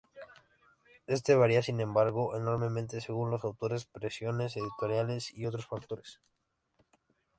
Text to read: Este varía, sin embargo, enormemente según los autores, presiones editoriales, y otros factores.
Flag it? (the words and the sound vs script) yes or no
no